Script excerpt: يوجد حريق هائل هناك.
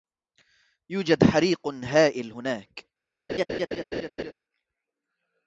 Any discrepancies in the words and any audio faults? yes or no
yes